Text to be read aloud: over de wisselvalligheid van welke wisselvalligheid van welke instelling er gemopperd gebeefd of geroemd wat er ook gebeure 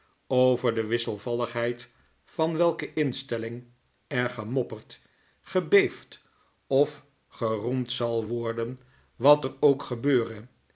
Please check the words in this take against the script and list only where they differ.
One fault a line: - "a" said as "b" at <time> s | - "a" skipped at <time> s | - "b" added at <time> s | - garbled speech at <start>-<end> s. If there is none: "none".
- "wisselvalligheid van welke" skipped at 3.0 s
- "zal worden" added at 7.9 s